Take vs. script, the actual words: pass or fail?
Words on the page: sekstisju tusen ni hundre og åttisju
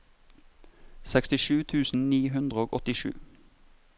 pass